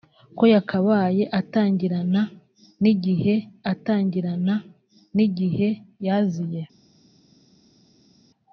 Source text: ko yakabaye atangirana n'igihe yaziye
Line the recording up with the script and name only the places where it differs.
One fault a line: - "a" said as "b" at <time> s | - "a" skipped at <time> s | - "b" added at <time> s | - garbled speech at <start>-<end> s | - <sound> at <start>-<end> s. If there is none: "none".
- "atangirana n'igihe" added at 3.7 s